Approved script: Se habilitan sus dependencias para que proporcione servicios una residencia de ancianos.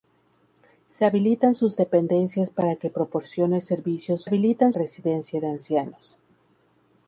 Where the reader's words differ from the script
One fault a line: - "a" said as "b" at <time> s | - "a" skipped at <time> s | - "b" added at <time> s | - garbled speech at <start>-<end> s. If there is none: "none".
- "una" said as "habilitan" at 4.2 s